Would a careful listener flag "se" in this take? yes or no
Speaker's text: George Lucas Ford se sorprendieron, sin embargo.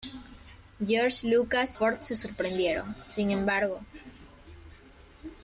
no